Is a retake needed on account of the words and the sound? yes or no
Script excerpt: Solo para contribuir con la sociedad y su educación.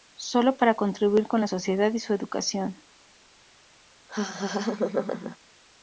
yes